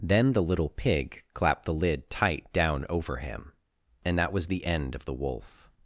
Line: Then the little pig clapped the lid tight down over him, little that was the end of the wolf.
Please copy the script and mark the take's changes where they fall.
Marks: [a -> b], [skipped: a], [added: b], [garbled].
Then the little pig clapped the lid tight down over him, [little -> and] that was the end of the wolf.